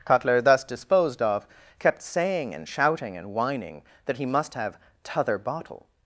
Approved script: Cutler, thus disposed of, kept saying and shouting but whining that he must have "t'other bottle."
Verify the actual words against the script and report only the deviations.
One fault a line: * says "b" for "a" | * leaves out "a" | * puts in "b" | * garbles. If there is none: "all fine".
* says "and" for "but"